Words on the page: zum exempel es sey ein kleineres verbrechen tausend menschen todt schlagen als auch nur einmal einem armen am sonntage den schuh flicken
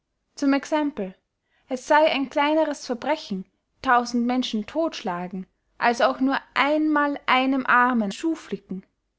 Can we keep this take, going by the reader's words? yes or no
no